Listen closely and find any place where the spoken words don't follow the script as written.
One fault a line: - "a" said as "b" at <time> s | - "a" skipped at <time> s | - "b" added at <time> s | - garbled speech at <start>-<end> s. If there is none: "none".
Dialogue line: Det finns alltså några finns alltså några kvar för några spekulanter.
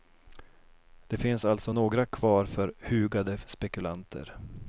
- "finns alltså några" skipped at 2.0 s
- "några" said as "hugade" at 2.8 s